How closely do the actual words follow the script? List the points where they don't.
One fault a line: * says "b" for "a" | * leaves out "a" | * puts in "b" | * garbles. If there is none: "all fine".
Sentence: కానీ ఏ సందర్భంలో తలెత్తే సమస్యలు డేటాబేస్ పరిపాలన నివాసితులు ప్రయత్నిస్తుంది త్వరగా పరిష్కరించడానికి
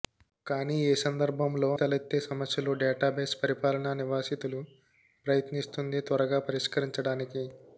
all fine